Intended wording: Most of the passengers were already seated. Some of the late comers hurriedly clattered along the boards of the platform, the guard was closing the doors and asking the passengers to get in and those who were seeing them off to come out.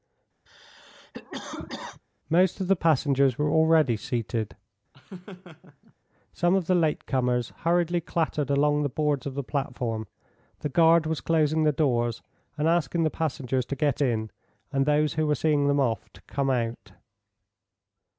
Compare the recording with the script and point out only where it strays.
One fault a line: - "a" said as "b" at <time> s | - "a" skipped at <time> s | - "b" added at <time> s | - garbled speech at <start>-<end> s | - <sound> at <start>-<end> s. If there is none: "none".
- cough at 0.5-2.0 s
- laugh at 4.9-5.9 s